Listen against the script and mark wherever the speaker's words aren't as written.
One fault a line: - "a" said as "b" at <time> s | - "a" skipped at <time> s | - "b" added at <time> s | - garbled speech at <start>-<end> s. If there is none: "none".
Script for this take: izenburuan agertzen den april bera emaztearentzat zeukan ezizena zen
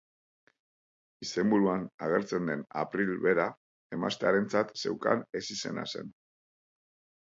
none